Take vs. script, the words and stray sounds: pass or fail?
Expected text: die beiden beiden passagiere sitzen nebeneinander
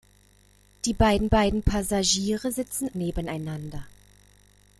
pass